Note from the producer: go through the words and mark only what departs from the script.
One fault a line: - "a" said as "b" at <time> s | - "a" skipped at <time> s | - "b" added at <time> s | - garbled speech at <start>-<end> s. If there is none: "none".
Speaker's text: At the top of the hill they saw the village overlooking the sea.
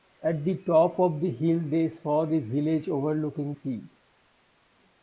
- "the" skipped at 3.5 s